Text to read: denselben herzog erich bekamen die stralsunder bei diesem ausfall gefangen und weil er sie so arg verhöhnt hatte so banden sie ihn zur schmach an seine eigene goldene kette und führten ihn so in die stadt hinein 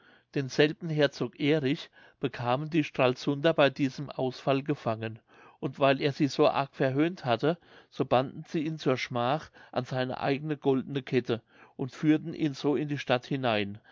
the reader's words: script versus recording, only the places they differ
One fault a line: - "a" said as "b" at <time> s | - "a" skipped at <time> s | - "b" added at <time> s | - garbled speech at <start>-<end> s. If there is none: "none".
none